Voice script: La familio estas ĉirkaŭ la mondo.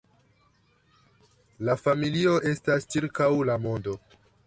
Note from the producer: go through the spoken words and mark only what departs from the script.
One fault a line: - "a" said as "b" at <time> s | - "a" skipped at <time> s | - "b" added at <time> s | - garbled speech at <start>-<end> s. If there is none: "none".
none